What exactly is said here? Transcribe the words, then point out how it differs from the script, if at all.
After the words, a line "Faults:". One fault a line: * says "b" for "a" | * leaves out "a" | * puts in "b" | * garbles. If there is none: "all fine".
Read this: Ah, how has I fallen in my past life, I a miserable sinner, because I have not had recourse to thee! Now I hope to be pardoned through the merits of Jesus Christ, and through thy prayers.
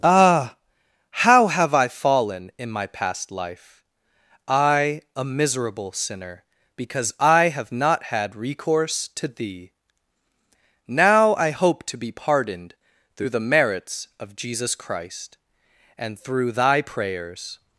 Ah, how have I fallen in my past life, I a miserable sinner, because I have not had recourse to thee! Now I hope to be pardoned through the merits of Jesus Christ, and through thy prayers.
Faults:
* says "have" for "has"